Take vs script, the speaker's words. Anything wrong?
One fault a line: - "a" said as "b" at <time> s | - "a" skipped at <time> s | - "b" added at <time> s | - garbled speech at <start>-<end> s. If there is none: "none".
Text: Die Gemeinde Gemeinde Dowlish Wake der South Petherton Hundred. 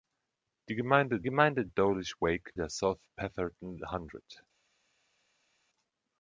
none